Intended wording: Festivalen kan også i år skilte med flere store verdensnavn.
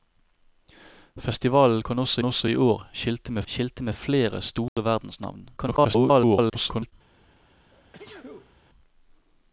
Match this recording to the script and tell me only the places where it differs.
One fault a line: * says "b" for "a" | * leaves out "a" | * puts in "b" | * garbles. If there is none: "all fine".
* puts in "også"
* puts in "skilte med"
* garbles